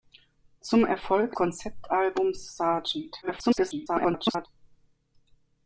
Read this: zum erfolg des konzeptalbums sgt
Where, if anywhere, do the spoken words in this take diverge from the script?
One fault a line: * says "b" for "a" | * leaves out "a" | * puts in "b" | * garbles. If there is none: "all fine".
* leaves out "des"
* garbles